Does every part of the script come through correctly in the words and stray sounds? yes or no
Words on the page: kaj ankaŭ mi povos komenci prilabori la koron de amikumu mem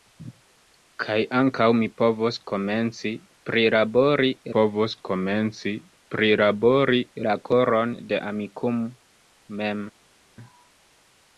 no